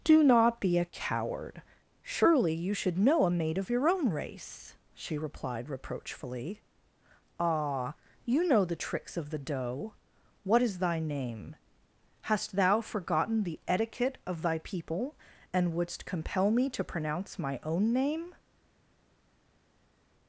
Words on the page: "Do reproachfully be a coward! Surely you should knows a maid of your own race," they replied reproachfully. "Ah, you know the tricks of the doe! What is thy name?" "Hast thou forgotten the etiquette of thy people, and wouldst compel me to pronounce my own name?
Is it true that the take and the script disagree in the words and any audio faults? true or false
true